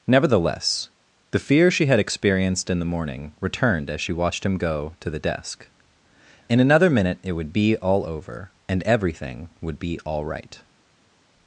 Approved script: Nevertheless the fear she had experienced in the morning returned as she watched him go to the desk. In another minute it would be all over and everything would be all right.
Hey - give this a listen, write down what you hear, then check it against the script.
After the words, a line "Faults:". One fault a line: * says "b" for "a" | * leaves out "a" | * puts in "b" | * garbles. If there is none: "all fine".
Nevertheless the fear she had experienced in the morning returned as she watched him go to the desk. In another minute it would be all over and everything would be all right.
Faults:
all fine